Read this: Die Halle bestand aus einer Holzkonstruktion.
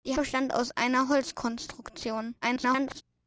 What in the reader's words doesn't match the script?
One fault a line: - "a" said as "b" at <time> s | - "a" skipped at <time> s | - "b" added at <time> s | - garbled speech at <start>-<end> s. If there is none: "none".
- "Halle" skipped at 0.2 s
- garbled speech at 2.4-3.0 s